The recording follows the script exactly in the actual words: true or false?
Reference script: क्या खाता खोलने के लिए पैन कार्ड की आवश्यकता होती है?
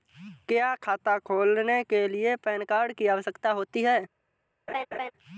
true